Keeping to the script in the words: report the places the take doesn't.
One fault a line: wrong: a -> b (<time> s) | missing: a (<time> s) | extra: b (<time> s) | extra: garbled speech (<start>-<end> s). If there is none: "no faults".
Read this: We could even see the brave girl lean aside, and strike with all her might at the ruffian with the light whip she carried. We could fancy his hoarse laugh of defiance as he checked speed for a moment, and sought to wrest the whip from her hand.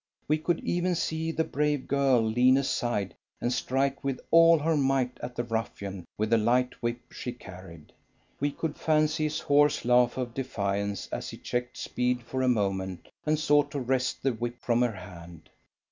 no faults